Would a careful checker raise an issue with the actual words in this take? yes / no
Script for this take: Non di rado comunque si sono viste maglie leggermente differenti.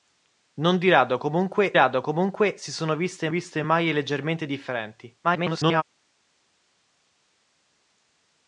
yes